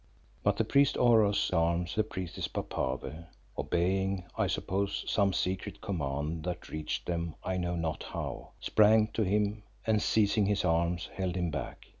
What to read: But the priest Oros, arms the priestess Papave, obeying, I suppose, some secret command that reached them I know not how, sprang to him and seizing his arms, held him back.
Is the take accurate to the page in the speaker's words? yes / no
yes